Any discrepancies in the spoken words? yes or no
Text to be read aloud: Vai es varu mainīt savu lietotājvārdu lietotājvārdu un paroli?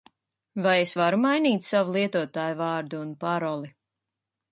yes